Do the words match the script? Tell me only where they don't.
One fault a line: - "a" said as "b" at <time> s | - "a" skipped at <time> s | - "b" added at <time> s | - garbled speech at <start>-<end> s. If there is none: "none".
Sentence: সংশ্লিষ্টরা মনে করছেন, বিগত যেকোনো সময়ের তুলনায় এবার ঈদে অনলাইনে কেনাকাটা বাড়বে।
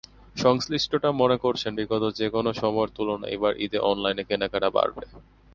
none